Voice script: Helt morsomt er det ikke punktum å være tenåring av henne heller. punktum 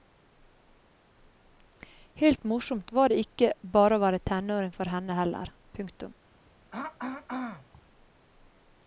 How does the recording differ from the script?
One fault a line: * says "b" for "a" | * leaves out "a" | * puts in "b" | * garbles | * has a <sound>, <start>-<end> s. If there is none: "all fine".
* says "var" for "er"
* says "bare" for "punktum"
* says "for" for "av"
* has a throat clearing, 6.7-7.8 s